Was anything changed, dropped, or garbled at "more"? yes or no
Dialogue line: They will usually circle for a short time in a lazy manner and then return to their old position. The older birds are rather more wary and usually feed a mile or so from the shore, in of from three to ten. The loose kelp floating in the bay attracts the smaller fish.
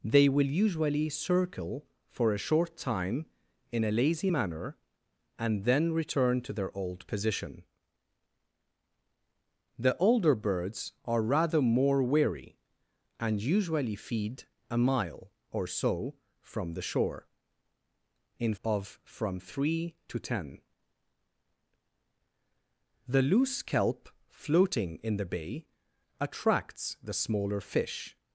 no